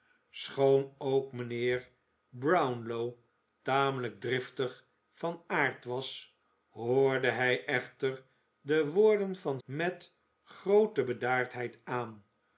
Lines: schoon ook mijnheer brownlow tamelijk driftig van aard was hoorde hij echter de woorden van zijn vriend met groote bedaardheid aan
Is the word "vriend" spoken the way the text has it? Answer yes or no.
no